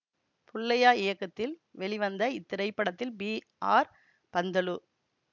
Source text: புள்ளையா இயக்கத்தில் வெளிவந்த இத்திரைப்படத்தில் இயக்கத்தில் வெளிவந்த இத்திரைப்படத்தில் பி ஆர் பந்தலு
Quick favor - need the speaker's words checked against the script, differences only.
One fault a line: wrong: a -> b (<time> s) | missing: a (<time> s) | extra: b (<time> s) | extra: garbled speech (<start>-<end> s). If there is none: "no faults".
missing: இயக்கத்தில் வெளிவந்த இத்திரைப்படத்தில் (3.1 s)